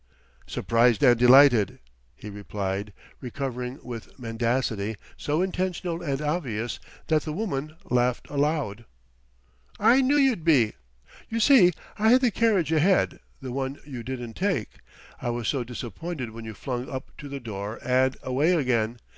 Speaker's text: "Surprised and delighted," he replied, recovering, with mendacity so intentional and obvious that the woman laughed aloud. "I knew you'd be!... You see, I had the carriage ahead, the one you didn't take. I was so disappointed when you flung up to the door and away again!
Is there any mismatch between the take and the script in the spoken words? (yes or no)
no